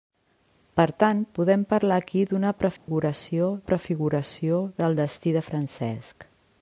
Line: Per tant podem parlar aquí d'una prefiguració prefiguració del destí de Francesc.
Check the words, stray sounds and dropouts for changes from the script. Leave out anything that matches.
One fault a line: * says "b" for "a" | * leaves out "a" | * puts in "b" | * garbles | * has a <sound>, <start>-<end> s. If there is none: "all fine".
* has a dropout, 2.8-2.9 s